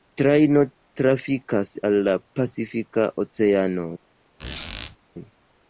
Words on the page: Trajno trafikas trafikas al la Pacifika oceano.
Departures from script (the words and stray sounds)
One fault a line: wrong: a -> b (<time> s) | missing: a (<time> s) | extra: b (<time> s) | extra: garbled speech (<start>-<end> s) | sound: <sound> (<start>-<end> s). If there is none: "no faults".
missing: trafikas (1.7 s)
sound: squeak (4.4-5.0 s)